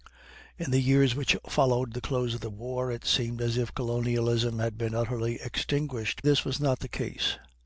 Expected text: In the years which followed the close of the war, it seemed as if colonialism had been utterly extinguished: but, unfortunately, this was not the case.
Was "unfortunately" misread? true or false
true